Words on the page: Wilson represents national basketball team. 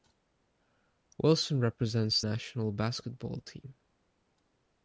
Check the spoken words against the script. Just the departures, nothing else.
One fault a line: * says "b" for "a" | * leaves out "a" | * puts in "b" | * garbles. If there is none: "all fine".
all fine